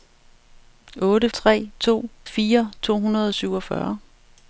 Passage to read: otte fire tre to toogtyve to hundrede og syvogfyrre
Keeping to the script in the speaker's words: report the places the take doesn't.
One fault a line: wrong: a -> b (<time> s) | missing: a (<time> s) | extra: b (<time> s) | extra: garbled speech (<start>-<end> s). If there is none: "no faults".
missing: fire (1.3 s)
wrong: toogtyve -> fire (2.2 s)